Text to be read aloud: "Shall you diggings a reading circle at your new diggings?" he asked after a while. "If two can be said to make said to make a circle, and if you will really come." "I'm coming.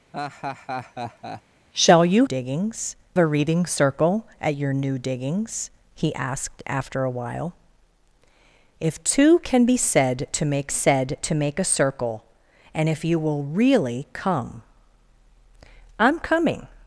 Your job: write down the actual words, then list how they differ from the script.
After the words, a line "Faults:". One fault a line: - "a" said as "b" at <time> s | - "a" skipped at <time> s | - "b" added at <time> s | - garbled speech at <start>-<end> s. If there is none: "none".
"Shall you diggings a reading circle at your new diggings?" he asked after a while. "If two can be said to make said to make a circle, and if you will really come." "I'm coming.
Faults:
none